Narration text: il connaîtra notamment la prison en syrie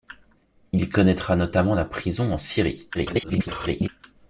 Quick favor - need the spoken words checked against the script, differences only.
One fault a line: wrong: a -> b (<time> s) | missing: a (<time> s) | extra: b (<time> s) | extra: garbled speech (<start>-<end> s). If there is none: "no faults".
extra: garbled speech (2.9-3.9 s)